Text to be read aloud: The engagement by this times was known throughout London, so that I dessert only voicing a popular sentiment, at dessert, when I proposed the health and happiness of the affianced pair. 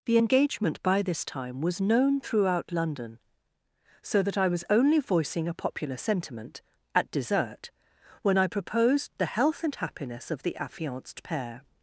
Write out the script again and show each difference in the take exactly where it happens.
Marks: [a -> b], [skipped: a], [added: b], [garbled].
The engagement by this [times -> time] was known throughout London, so that I [dessert -> was] only voicing a popular sentiment, at dessert, when I proposed the health and happiness of the affianced pair.